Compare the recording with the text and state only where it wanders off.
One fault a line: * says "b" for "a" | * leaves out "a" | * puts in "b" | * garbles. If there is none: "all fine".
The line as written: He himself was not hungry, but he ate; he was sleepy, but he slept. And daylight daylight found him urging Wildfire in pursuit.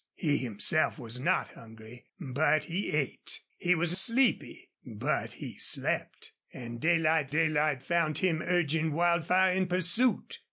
all fine